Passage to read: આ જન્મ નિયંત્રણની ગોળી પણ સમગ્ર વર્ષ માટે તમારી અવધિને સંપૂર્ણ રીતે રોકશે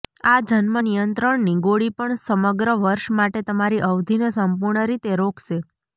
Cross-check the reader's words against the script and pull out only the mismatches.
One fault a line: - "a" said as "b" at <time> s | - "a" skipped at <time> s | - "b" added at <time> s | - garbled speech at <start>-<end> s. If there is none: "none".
none